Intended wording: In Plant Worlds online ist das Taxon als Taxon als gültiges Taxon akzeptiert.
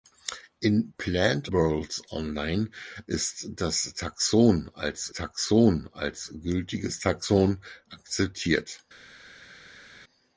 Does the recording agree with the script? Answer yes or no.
yes